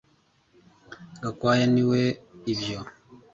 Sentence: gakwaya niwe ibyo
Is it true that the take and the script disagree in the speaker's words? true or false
false